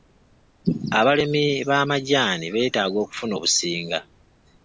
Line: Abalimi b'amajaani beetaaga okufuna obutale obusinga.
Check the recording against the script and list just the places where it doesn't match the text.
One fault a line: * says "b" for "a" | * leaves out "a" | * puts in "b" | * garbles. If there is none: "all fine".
* leaves out "obutale"